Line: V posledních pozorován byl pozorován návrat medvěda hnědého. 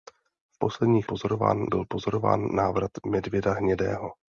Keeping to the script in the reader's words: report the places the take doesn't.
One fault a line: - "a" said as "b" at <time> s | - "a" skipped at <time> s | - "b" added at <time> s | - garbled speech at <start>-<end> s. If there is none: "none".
none